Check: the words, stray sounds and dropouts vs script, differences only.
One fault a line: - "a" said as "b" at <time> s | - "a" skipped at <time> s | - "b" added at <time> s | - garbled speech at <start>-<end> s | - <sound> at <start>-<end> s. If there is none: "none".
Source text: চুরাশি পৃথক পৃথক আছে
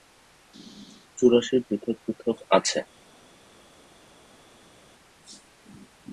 none